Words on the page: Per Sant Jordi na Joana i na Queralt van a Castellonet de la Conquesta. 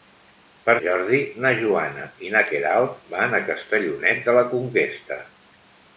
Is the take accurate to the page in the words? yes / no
no